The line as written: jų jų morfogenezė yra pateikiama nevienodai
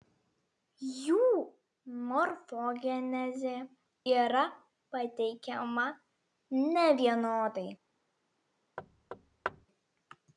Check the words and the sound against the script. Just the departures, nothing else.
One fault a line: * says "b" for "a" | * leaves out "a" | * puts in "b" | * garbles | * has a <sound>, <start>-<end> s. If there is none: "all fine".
* leaves out "jų"
* has a thud, 8.8-9.7 s